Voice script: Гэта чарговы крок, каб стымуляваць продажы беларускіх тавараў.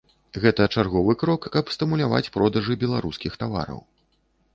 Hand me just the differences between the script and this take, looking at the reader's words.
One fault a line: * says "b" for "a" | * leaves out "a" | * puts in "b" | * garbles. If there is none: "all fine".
all fine